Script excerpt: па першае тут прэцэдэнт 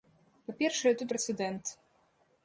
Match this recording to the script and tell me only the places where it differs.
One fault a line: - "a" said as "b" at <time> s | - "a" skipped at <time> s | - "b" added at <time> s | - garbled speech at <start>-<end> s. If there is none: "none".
none